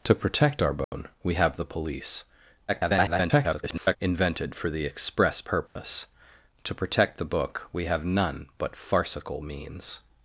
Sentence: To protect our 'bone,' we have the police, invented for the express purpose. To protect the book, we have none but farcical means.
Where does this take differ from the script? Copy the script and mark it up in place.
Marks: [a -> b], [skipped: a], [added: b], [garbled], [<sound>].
To protect our 'bone,' [dropout] we have the police, [garbled] invented for the express purpose. [dropout] To protect the book, we have none but farcical means.